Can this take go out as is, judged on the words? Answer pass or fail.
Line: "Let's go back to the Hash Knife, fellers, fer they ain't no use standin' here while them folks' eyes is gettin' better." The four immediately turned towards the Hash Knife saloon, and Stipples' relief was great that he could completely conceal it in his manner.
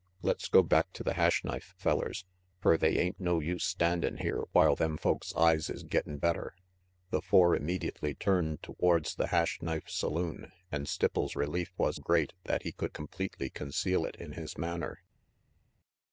pass